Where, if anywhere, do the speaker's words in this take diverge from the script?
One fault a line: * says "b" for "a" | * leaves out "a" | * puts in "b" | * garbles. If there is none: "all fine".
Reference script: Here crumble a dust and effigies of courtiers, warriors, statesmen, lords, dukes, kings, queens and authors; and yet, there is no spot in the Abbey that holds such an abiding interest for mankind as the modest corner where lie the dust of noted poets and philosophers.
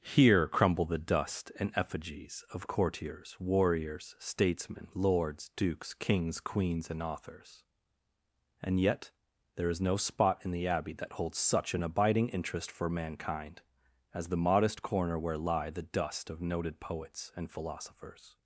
* says "the" for "a"